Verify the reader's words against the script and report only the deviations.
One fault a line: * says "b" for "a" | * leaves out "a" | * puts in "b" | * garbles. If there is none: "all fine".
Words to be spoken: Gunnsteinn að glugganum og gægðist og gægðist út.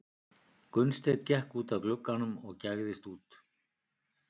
* puts in "gekk út"
* leaves out "og gægðist"